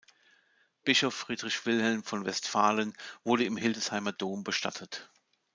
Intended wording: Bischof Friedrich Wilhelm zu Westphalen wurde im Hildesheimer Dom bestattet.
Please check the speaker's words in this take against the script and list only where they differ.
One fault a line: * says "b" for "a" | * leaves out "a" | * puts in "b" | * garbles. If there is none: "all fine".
* says "von" for "zu"